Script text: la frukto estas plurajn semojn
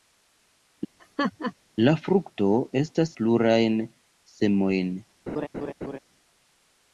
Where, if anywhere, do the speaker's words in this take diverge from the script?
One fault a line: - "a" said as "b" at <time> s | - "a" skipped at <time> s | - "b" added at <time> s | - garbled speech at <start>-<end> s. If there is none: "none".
none